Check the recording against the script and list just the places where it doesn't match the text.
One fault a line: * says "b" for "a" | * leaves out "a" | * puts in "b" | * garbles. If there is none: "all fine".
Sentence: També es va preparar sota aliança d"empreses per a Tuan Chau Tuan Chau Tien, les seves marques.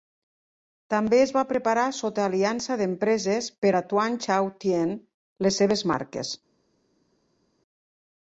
* leaves out "Tuan Chau"